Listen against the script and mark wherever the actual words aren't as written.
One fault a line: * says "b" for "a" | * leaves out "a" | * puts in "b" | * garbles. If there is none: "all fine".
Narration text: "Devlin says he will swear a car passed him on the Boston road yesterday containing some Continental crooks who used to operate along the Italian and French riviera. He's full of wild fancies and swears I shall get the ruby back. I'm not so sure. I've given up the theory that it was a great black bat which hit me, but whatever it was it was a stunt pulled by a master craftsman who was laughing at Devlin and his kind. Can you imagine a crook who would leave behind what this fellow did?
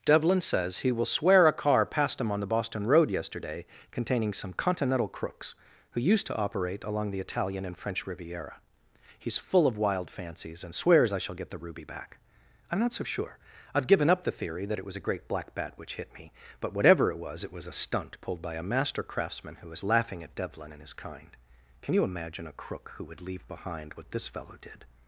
all fine